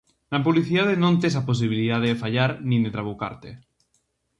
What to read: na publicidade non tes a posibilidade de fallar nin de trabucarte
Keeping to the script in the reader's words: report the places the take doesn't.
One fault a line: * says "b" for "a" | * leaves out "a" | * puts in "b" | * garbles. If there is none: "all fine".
all fine